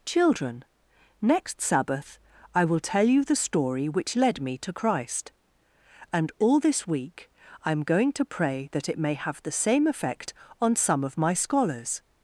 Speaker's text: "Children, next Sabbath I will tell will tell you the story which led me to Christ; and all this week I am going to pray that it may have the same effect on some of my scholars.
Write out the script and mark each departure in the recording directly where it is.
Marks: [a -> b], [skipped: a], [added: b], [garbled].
"Children, next Sabbath I will tell [skipped: will tell] you the story which led me to Christ; and all this week I am going to pray that it may have the same effect on some of my scholars.